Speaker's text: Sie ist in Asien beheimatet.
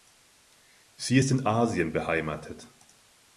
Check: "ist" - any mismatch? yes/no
no